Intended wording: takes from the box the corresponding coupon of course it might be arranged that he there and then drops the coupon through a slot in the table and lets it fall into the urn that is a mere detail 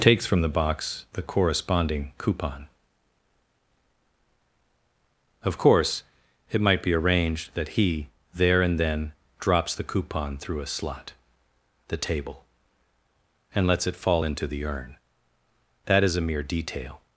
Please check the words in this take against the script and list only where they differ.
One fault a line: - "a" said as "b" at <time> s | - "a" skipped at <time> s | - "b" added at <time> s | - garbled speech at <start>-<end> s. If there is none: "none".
- "in" skipped at 11.1 s